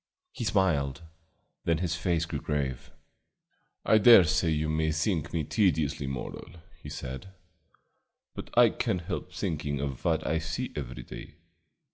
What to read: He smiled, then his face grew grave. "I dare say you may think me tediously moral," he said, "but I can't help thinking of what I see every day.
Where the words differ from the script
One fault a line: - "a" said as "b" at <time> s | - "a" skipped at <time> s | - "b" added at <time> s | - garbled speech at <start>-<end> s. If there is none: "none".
none